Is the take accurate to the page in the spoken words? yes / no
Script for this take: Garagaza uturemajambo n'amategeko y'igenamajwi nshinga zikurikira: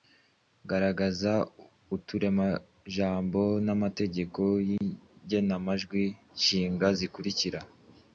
yes